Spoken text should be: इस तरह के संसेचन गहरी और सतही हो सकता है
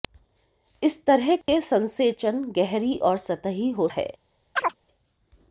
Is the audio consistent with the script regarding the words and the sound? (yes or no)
no